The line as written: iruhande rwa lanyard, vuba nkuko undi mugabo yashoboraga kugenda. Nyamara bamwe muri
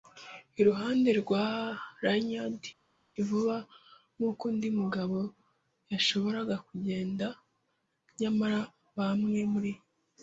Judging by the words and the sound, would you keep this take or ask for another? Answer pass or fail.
pass